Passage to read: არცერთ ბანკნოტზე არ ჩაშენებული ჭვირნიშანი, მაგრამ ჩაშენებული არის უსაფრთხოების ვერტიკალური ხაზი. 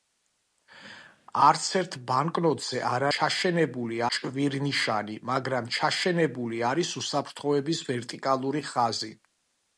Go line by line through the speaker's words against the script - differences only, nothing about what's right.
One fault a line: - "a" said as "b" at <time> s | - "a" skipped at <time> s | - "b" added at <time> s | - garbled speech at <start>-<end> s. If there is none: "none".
none